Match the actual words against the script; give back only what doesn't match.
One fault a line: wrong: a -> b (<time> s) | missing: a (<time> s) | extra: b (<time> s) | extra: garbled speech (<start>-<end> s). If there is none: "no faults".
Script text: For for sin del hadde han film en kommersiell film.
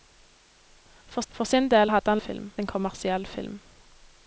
no faults